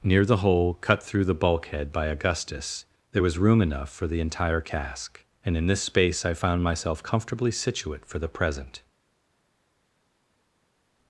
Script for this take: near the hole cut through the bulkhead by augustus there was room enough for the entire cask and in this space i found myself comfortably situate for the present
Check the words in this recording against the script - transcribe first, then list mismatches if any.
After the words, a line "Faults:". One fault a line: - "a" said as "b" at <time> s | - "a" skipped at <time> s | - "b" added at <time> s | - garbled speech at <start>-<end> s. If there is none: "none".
near the hole cut through the bulkhead by augustus there was room enough for the entire cask and in this space i found myself comfortably situate for the present
Faults:
none